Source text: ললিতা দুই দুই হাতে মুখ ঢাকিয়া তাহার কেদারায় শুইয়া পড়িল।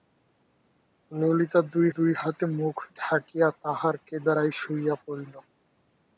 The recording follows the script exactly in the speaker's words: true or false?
true